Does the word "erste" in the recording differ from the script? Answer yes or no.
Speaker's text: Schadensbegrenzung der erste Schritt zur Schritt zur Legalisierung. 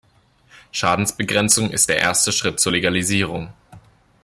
no